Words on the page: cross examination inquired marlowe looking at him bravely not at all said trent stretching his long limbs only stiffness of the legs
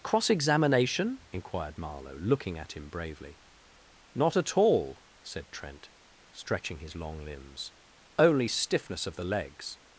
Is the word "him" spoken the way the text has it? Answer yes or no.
yes